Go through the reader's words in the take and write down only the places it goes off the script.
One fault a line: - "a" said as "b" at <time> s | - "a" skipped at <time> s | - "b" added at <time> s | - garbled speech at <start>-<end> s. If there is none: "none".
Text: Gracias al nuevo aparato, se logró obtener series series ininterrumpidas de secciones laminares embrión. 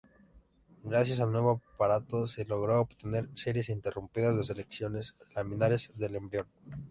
- "series" skipped at 3.7 s
- "del" added at 6.0 s